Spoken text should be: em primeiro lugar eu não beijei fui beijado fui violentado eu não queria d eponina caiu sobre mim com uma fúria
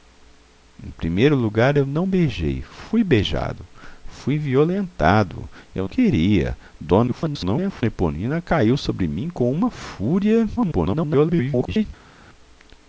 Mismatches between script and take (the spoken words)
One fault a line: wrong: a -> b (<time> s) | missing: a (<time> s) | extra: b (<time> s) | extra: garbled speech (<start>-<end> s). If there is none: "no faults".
missing: não (5.9 s)
extra: garbled speech (7.1-7.8 s)
extra: garbled speech (10.6-11.9 s)